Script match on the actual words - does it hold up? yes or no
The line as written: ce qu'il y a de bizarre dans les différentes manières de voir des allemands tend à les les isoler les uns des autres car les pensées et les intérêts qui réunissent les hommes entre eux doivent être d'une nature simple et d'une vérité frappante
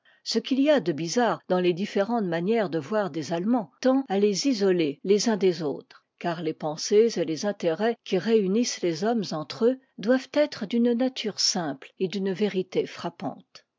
no